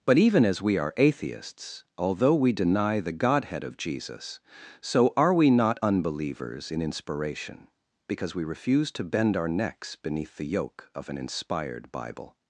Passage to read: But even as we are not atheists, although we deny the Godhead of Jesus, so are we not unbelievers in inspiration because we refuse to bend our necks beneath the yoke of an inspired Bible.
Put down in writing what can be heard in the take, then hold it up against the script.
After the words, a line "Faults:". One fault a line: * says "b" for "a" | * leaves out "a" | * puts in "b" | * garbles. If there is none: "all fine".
But even as we are atheists, although we deny the Godhead of Jesus, so are we not unbelievers in inspiration because we refuse to bend our necks beneath the yoke of an inspired Bible.
Faults:
* leaves out "not"